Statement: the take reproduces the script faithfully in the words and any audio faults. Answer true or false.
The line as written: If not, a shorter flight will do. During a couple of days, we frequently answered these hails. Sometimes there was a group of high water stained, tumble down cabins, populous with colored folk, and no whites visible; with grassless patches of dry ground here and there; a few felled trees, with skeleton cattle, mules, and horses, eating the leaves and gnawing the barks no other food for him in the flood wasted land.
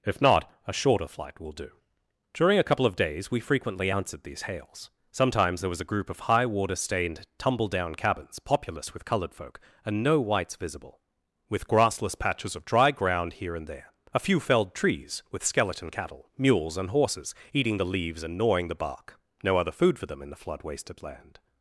false